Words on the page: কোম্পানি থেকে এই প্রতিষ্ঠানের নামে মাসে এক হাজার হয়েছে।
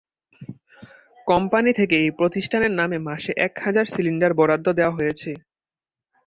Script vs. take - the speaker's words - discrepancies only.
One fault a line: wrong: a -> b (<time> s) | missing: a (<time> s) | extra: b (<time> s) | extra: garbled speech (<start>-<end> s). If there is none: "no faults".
extra: সিলিন্ডার বরাদ্দ দেওয়া (3.9 s)